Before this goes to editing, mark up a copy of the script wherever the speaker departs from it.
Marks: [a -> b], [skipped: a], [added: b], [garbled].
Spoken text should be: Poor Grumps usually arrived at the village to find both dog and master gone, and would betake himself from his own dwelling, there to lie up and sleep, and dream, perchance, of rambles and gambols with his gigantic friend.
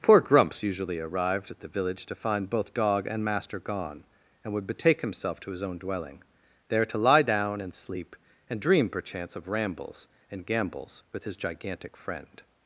Poor Grumps usually arrived at the village to find both dog and master gone, and would betake himself [from -> to] his own dwelling, there to lie [up -> down] and sleep, and dream, perchance, of rambles and gambols with his gigantic friend.